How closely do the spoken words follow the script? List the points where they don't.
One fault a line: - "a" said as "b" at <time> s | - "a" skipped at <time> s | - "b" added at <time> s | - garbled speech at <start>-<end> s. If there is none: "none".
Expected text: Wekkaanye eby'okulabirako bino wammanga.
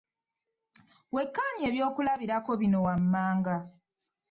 none